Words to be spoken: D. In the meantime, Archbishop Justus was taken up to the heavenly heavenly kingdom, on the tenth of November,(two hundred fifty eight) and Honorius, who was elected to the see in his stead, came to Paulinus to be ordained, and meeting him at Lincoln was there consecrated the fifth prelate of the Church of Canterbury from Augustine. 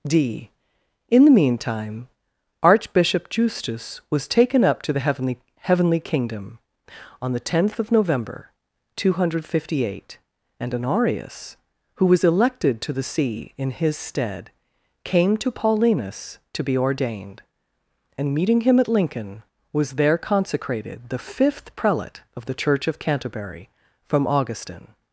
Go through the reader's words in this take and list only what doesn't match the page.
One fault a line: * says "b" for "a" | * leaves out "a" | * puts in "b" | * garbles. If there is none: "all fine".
all fine